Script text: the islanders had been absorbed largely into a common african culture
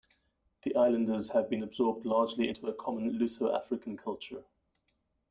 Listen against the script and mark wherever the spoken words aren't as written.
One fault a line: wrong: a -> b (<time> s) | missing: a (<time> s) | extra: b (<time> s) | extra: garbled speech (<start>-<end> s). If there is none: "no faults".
wrong: had -> have (1.3 s)
extra: luso (3.2 s)